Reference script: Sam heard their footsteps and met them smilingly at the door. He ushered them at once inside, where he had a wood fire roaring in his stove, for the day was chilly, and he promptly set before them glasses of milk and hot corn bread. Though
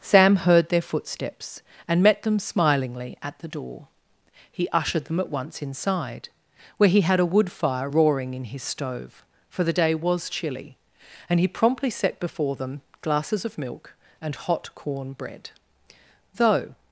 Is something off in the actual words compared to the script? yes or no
no